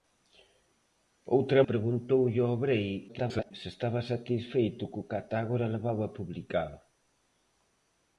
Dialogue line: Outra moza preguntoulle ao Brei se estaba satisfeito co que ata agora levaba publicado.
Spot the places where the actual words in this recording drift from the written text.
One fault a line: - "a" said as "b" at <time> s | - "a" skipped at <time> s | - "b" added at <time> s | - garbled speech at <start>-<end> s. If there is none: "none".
- "moza" skipped at 1.6 s
- garbled speech at 3.1-3.5 s